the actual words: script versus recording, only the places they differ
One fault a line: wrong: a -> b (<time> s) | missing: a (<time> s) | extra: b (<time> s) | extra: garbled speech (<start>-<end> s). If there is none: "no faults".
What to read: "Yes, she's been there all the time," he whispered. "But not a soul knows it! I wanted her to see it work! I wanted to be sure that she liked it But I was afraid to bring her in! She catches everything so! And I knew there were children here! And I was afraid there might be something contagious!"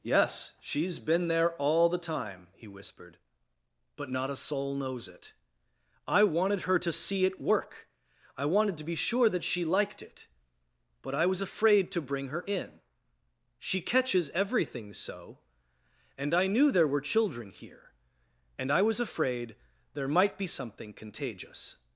no faults